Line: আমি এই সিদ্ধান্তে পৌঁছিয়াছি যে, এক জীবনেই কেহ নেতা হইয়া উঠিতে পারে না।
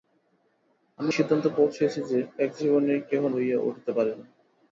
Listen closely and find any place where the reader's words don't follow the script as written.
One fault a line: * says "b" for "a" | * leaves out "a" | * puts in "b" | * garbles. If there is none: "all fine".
* leaves out "এই"
* leaves out "নেতা"